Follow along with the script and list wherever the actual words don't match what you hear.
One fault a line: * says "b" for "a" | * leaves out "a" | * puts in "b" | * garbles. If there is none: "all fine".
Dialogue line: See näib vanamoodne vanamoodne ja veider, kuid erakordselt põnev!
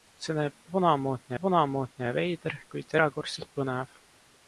all fine